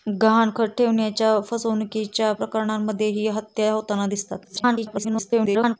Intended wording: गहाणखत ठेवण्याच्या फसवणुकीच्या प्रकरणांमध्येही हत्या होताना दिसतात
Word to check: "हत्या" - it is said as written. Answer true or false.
true